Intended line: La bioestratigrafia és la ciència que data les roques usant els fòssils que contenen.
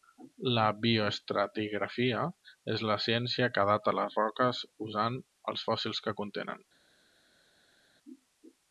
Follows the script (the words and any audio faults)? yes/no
yes